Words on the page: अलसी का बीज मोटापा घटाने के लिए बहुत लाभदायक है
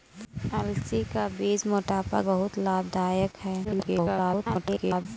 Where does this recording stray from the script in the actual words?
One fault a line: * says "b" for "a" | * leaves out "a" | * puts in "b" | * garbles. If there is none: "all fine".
* leaves out "घटाने के लिए"
* garbles